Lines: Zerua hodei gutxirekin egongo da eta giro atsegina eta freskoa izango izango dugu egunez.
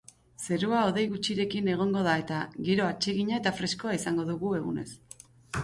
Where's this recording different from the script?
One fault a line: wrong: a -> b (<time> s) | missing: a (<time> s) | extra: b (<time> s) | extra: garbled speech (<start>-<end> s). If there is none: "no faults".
missing: izango (4.3 s)